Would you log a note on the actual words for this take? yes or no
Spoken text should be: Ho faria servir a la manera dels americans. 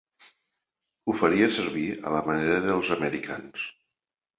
no